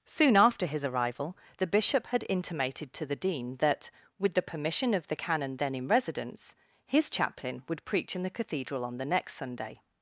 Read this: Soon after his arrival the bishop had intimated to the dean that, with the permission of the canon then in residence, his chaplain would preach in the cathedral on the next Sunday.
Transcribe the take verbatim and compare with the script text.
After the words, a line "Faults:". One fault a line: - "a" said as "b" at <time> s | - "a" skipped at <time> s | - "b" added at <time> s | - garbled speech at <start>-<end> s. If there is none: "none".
Soon after his arrival the bishop had intimated to the dean that, with the permission of the canon then in residence, his chaplain would preach in the cathedral on the next Sunday.
Faults:
none